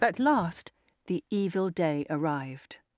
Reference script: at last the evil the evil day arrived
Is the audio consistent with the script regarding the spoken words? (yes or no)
no